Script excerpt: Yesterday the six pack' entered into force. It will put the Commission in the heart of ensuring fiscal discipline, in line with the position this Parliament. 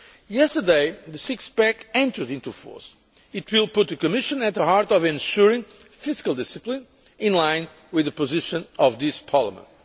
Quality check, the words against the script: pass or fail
fail